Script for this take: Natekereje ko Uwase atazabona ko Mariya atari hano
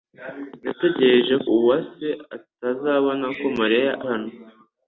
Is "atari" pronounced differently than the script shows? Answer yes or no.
yes